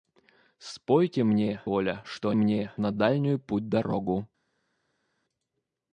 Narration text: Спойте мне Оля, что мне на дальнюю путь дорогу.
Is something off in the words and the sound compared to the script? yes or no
no